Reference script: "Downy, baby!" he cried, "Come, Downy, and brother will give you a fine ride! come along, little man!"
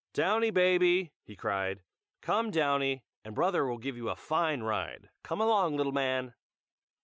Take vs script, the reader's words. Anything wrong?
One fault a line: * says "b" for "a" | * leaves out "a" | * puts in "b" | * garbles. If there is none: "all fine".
all fine